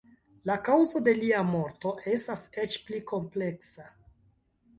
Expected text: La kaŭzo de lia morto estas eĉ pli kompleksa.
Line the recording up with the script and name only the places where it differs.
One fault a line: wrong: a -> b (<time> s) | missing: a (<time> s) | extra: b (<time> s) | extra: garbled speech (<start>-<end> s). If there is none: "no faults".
no faults